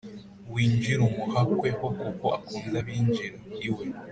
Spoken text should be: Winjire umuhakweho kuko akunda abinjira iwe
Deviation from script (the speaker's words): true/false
false